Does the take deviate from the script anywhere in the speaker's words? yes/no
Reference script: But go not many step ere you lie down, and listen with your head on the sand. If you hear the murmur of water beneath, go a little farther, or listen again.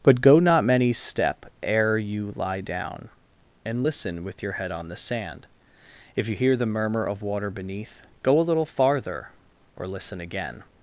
no